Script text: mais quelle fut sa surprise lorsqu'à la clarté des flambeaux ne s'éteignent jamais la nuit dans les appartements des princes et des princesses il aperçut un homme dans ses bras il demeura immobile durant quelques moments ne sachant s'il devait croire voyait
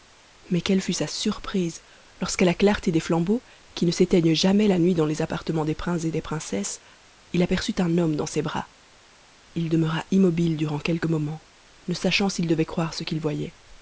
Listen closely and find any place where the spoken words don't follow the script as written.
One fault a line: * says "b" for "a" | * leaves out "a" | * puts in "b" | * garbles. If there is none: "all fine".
* puts in "qui"
* puts in "ce qu'il"